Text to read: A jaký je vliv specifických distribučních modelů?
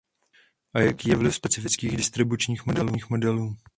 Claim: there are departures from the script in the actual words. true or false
false